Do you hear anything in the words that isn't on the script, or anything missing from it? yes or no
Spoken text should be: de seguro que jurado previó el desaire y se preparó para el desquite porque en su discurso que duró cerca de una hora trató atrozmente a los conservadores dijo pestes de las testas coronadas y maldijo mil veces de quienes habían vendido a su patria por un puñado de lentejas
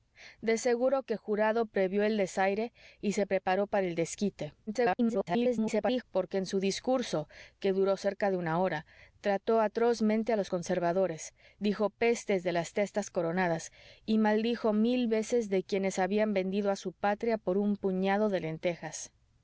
yes